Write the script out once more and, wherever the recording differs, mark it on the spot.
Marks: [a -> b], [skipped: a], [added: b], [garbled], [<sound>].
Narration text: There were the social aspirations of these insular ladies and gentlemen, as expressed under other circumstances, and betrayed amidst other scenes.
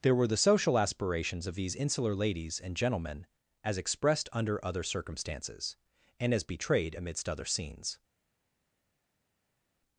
There were the social aspirations of these insular ladies and gentlemen, as expressed under other circumstances, and [added: as] betrayed amidst other scenes.